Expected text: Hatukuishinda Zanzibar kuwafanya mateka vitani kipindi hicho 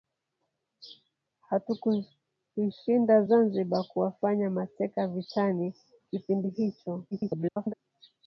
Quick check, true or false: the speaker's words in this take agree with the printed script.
false